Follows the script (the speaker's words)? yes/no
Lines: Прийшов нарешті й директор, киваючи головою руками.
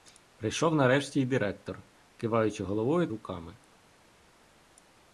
yes